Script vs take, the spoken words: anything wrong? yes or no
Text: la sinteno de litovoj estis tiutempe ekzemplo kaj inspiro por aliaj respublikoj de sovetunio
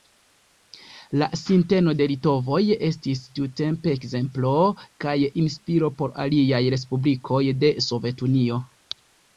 no